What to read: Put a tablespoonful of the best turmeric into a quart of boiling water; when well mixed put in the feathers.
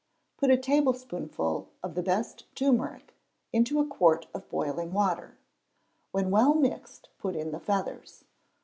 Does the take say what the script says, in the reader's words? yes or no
yes